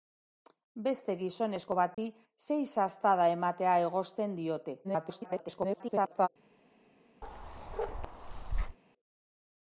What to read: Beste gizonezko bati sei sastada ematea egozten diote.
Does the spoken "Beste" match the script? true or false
true